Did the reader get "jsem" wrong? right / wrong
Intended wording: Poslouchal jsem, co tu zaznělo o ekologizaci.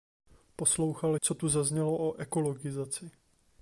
wrong